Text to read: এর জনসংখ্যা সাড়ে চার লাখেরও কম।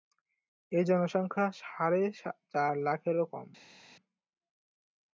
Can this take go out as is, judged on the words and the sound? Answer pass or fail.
pass